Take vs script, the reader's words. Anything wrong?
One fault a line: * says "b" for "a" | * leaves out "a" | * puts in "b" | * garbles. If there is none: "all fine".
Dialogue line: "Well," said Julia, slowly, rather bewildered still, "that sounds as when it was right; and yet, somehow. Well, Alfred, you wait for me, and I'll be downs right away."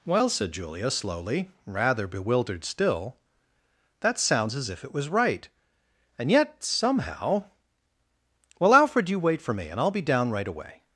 * says "if" for "when"
* says "down" for "downs"